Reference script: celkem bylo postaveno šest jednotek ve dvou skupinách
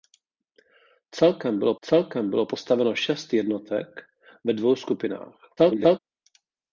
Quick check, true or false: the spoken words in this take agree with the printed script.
false